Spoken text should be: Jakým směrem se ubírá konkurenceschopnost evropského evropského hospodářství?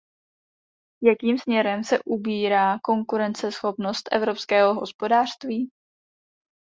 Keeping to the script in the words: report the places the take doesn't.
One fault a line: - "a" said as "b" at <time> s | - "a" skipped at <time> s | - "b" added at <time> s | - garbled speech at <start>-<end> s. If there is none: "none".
- "evropského" skipped at 4.7 s